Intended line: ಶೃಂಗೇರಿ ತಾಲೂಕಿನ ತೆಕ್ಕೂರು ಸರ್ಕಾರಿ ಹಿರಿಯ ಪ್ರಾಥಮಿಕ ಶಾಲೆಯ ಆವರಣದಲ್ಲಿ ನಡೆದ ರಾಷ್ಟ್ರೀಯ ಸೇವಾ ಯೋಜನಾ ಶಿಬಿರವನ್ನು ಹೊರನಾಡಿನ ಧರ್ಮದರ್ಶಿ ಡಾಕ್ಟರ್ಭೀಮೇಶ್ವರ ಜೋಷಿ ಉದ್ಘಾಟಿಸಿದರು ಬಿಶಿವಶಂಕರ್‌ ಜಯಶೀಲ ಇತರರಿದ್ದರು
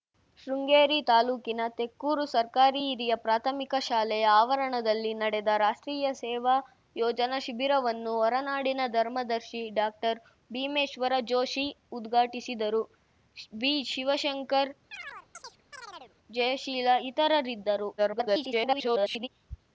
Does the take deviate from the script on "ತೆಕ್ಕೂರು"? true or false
false